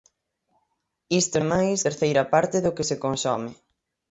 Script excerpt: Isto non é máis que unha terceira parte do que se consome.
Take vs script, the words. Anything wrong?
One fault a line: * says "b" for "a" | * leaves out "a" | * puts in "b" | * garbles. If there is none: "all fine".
* leaves out "non"
* leaves out "que unha"